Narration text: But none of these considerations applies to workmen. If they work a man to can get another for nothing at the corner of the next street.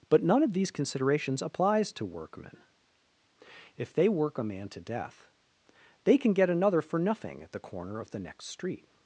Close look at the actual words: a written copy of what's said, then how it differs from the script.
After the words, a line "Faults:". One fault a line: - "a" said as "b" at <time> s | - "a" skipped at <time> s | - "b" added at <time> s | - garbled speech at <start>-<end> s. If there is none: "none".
But none of these considerations applies to workmen. If they work a man to death they can get another for nothing at the corner of the next street.
Faults:
- "death they" added at 4.8 s